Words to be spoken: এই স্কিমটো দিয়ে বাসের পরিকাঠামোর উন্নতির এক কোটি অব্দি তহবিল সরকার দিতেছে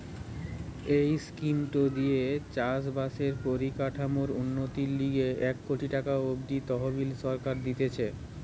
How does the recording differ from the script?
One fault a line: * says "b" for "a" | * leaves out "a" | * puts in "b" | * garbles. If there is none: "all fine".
* puts in "চাষ"
* puts in "লিগে"
* puts in "টাকা"